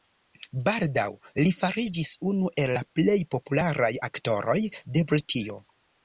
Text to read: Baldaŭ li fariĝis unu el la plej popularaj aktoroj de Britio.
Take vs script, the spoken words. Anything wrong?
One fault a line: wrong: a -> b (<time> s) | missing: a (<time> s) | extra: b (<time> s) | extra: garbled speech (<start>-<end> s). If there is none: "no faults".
no faults